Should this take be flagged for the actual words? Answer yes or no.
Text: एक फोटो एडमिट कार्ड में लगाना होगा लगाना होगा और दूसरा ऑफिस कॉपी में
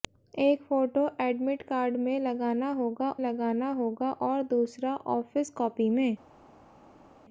no